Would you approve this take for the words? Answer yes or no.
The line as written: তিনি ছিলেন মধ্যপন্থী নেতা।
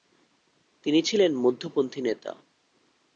yes